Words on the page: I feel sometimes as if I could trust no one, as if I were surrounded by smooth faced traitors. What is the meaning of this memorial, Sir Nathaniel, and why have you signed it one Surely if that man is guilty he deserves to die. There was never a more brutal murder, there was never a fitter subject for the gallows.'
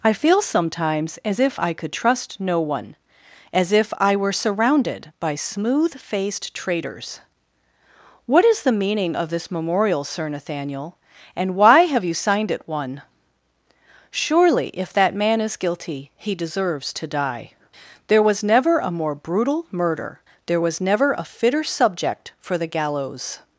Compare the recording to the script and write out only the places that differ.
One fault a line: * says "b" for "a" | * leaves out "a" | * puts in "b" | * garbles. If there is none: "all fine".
all fine